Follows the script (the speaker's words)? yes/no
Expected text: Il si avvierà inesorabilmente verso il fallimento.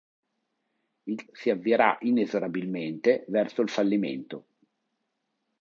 yes